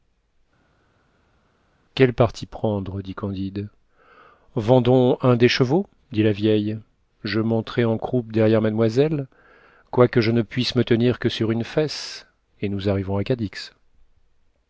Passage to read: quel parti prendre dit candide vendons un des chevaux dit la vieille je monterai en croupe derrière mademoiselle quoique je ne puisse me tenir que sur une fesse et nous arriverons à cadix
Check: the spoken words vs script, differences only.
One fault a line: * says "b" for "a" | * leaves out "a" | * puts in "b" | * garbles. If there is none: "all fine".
all fine